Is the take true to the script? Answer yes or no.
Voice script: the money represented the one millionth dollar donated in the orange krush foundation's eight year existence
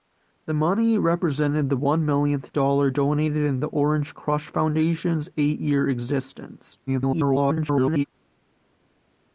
no